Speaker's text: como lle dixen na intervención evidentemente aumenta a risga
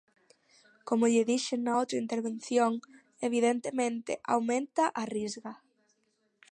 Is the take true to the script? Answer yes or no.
no